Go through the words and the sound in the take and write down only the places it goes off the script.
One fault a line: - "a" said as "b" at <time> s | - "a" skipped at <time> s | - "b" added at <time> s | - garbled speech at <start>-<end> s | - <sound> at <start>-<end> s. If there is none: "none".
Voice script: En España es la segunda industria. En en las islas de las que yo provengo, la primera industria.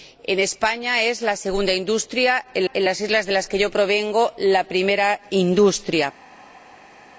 none